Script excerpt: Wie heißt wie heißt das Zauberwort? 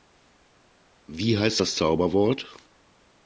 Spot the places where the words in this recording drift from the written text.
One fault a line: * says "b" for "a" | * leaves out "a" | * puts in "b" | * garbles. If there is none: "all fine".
* leaves out "wie heißt"